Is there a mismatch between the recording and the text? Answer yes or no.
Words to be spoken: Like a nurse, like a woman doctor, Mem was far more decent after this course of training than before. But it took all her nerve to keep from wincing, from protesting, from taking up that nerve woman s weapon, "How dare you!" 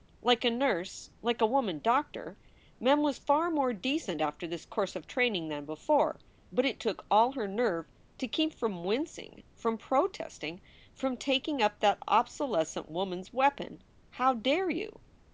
yes